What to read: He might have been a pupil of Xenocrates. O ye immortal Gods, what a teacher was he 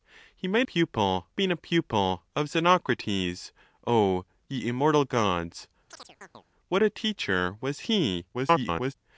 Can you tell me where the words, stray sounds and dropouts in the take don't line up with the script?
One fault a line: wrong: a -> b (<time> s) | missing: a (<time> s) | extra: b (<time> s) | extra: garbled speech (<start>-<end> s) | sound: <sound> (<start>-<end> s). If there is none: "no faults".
wrong: have -> pupil (0.6 s)
sound: chirp (5.9-6.4 s)
extra: garbled speech (8.3-8.9 s)